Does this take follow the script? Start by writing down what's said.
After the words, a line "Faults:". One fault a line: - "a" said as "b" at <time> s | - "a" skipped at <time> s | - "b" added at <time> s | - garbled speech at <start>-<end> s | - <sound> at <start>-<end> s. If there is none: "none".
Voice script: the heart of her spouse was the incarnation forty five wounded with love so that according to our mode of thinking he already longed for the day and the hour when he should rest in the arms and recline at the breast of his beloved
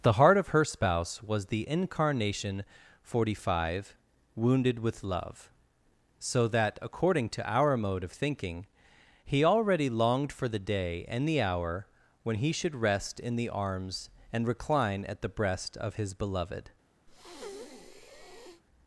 the heart of her spouse was the incarnation forty five wounded with love so that according to our mode of thinking he already longed for the day and the hour when he should rest in the arms and recline at the breast of his beloved
Faults:
- breath at 17.1-18.6 s